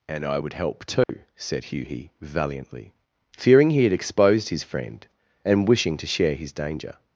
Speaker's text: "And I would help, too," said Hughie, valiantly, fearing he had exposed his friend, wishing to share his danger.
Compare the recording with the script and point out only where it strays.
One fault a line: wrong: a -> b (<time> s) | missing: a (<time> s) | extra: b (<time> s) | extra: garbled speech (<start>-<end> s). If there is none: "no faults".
extra: and (5.4 s)